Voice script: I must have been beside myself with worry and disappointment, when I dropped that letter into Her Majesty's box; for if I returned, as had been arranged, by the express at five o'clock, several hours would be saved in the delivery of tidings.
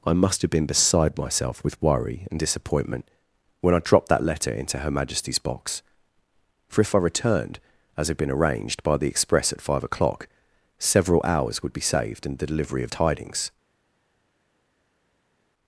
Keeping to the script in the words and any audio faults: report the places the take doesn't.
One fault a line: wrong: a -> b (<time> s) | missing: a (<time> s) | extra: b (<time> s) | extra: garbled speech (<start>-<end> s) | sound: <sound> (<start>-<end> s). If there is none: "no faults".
no faults